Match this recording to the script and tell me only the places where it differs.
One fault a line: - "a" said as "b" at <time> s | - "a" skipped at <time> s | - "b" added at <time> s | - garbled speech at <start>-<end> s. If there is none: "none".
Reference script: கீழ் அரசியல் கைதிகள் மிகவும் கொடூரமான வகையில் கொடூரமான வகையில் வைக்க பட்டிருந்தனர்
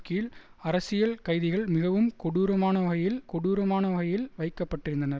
none